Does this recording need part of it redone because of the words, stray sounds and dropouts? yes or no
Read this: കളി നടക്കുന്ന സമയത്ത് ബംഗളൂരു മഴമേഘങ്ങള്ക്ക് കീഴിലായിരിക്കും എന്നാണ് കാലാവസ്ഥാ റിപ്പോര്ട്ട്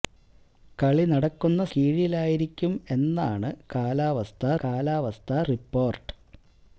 yes